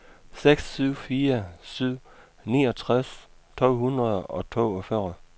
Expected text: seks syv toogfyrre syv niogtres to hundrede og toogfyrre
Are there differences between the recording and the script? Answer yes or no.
yes